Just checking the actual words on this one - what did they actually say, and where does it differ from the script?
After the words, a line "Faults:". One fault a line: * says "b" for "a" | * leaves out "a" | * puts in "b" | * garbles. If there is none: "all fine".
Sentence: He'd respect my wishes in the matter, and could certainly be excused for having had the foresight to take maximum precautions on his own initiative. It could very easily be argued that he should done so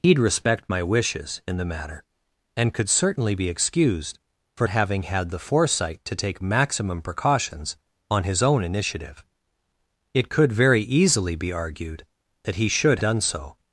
He'd respect my wishes in the matter, and could certainly be excused for having had the foresight to take maximum precautions on his own initiative. It could very easily be argued that he should done so
Faults:
all fine